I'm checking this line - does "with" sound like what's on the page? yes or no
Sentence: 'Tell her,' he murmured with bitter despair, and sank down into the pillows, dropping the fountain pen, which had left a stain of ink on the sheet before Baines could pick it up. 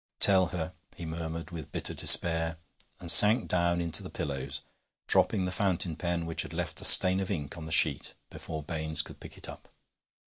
yes